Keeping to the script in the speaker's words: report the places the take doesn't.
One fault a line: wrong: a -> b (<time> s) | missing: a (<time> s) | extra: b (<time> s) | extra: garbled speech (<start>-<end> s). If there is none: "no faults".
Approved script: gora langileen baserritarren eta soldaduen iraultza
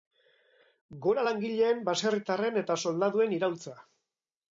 no faults